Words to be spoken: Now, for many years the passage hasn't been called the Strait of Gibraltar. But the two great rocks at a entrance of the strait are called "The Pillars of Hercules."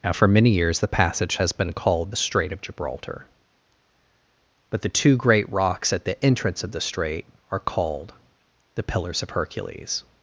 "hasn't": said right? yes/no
no